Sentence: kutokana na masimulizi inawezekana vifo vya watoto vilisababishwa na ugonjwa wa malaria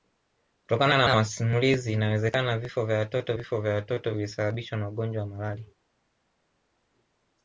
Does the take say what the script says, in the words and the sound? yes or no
no